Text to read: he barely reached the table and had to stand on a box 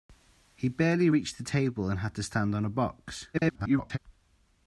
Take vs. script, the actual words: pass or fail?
fail